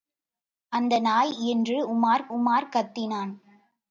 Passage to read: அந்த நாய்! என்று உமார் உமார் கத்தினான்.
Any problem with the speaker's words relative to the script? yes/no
no